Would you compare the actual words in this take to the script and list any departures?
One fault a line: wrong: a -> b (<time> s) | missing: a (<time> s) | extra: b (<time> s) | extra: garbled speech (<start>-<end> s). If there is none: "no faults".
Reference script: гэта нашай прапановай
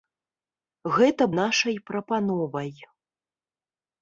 no faults